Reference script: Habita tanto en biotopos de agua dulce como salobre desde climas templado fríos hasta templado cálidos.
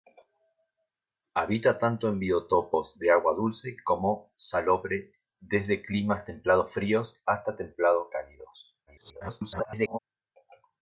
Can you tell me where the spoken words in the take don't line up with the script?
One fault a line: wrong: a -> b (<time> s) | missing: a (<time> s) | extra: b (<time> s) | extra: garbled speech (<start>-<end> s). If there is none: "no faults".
extra: garbled speech (8.9-10.0 s)